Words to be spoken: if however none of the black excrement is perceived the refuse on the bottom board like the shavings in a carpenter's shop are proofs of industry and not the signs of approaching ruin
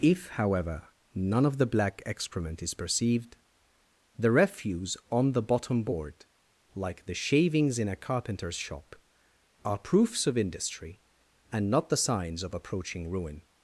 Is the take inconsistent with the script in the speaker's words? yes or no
no